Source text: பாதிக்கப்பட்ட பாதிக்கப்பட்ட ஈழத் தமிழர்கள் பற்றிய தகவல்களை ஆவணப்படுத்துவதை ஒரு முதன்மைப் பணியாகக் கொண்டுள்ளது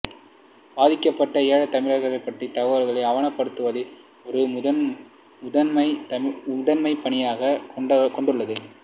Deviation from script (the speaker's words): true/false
true